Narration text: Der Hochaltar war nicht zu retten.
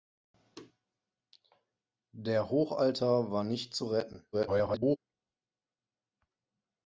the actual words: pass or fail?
fail